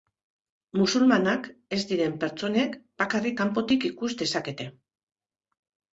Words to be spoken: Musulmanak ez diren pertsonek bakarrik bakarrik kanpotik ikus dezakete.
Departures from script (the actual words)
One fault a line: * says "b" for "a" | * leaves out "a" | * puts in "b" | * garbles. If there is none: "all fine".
* leaves out "bakarrik"